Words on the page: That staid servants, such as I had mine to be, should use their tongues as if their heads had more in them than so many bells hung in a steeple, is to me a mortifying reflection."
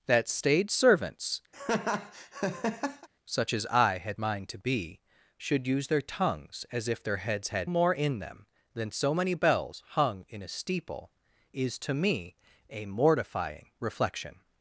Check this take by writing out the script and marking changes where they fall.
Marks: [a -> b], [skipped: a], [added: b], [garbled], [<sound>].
That staid servants, [laugh] such as I had mine to be, should use their tongues as if their heads had more in them than so many bells hung in a steeple, is to me a mortifying reflection."